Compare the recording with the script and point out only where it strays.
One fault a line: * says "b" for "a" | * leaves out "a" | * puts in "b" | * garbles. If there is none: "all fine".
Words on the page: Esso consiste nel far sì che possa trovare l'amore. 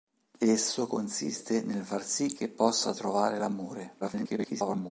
* garbles